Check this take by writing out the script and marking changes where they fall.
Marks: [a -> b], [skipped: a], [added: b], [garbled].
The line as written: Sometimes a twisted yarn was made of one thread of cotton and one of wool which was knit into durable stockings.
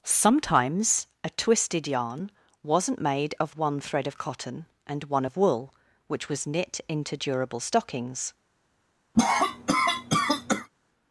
Sometimes a twisted yarn [was -> wasn't] made of one thread of cotton and one of wool which was knit into durable stockings.